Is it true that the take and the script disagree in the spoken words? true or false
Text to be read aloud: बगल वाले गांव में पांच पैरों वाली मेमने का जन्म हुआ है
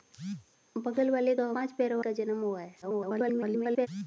true